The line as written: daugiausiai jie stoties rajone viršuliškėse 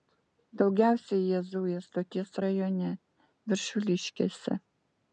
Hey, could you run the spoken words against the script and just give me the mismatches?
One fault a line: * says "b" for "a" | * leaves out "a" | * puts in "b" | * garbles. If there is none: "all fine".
* puts in "zuja"